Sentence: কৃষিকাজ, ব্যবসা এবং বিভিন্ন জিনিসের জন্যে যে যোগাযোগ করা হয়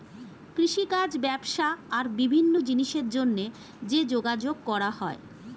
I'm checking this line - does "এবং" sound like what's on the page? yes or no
no